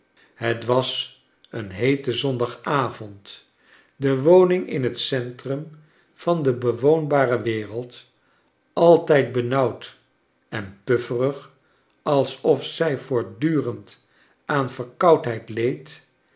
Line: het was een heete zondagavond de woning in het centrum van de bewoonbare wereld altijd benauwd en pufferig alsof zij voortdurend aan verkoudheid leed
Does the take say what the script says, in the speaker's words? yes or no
yes